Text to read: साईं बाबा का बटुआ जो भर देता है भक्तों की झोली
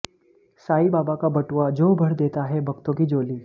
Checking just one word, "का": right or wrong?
right